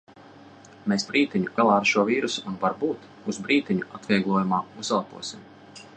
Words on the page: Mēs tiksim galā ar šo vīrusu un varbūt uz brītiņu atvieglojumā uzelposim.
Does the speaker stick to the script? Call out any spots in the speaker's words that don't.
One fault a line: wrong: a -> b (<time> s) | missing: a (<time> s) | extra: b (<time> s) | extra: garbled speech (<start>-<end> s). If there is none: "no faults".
wrong: tiksim -> brītiņu (1.1 s)